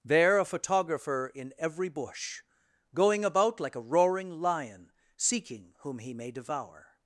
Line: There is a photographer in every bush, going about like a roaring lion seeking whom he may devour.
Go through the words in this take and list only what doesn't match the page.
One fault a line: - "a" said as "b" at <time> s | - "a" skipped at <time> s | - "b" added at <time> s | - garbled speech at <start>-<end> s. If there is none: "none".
- "is" skipped at 0.4 s